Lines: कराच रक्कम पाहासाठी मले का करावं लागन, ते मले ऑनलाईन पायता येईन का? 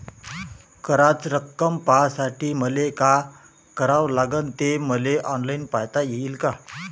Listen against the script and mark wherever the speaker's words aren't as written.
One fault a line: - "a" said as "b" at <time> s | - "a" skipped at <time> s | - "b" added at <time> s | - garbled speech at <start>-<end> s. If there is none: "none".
none